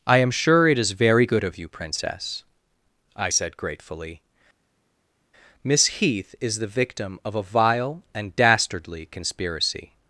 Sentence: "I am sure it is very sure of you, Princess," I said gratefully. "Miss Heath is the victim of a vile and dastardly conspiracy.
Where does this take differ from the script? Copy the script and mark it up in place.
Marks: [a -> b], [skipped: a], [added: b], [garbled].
"I am sure it is very [sure -> good] of you, Princess," I said gratefully. "Miss Heath is the victim of a vile and dastardly conspiracy.